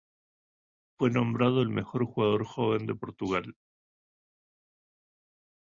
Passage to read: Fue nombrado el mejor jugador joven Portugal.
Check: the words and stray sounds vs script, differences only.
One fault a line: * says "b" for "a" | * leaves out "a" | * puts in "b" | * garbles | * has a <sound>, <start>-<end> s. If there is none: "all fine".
* puts in "de"